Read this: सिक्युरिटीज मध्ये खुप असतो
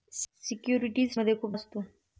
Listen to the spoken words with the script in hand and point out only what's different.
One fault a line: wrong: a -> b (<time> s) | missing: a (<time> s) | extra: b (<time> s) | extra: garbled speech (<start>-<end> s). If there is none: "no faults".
no faults